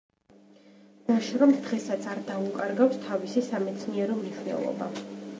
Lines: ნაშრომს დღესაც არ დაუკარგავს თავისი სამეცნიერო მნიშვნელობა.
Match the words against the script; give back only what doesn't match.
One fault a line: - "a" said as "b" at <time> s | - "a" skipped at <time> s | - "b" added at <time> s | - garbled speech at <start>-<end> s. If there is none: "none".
none